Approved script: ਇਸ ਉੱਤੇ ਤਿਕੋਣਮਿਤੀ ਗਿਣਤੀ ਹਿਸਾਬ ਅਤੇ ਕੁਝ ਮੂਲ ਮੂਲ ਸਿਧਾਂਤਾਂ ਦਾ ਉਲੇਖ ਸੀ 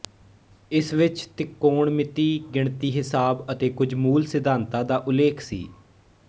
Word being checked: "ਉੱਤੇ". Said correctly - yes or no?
no